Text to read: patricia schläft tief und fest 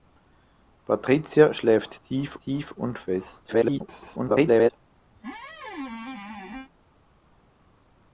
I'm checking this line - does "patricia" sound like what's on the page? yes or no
yes